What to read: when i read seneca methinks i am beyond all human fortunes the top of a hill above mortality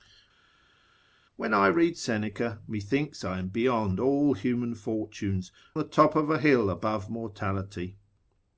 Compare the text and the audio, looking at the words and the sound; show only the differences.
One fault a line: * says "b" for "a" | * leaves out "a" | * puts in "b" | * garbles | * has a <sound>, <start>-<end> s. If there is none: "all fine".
all fine